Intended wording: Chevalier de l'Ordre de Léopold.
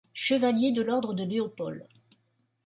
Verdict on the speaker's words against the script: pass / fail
pass